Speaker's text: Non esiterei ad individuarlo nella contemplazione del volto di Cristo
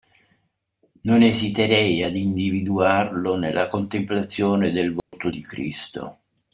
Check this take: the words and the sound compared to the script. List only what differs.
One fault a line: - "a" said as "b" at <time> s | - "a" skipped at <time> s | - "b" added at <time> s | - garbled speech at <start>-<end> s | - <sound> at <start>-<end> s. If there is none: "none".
- dropout at 5.0-5.1 s